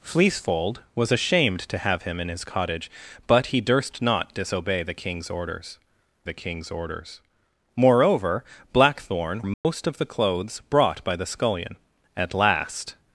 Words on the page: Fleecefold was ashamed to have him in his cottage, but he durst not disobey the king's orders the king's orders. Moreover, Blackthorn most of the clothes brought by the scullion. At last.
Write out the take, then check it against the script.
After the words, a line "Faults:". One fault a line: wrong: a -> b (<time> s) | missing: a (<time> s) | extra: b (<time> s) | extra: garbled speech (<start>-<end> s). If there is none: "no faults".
Fleecefold was ashamed to have him in his cottage, but he durst not disobey the king's orders the king's orders. Moreover, Blackthorn most of the clothes brought by the scullion. At last.
Faults:
no faults